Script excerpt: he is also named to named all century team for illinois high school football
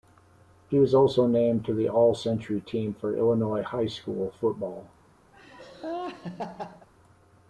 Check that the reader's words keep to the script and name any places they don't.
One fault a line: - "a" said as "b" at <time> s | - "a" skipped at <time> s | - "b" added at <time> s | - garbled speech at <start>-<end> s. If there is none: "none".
- "is" said as "was" at 0.8 s
- "named" said as "the" at 1.8 s